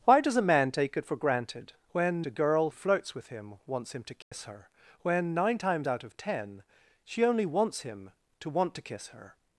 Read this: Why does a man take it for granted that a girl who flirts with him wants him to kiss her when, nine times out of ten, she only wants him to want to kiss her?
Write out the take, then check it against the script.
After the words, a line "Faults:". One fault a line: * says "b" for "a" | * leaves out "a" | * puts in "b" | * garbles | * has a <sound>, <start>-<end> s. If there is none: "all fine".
Why does a man take it for granted when a girl flirts with him wants him to kiss her when, nine times out of ten, she only wants him to want to kiss her?
Faults:
* says "when" for "that"
* leaves out "who"
* has a dropout, 4.2-4.3 s